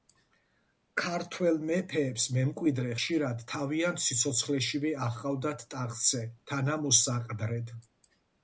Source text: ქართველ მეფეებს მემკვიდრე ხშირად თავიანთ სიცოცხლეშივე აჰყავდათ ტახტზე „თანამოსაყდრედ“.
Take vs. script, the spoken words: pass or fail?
pass